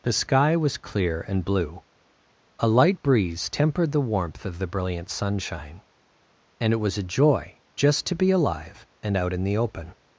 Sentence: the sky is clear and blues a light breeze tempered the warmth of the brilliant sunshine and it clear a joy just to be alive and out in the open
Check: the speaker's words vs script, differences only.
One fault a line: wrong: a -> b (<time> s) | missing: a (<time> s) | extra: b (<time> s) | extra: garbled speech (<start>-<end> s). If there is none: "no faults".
wrong: is -> was (0.6 s)
wrong: blues -> blue (1.4 s)
wrong: clear -> was (6.8 s)